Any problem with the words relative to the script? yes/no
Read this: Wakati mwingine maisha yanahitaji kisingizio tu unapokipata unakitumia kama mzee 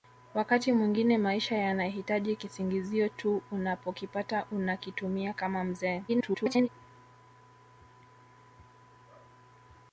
yes